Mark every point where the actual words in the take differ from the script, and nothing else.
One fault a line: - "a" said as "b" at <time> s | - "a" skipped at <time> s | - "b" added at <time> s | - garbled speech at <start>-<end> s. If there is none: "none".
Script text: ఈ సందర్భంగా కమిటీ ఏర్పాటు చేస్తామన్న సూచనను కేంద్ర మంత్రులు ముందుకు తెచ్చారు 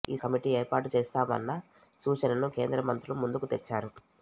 - "సందర్భంగా" skipped at 0.1 s